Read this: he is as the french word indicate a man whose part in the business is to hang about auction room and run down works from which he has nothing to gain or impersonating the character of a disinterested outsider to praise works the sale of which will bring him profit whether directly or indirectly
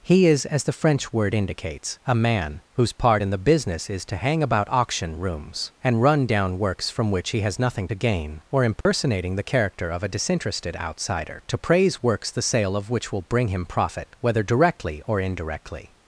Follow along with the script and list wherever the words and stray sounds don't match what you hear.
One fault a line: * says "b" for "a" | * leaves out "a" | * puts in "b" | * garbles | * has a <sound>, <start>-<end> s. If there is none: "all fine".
* says "indicates" for "indicate"
* says "rooms" for "room"
* has a dropout, 8.8-8.9 s